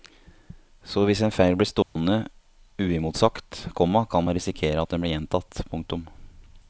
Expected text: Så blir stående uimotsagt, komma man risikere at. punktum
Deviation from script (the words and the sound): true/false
true